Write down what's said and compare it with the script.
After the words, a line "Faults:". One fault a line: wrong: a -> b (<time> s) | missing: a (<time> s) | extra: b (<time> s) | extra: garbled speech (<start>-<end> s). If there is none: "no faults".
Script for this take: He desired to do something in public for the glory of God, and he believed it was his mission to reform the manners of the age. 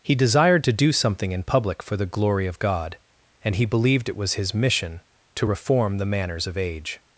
He desired to do something in public for the glory of God, and he believed it was his mission to reform the manners of age.
Faults:
missing: the (6.6 s)